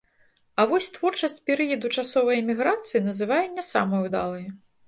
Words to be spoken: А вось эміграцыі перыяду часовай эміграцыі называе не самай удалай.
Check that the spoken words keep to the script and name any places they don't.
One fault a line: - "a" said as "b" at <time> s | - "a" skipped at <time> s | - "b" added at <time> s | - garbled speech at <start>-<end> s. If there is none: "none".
- "эміграцыі" said as "творчасць" at 0.9 s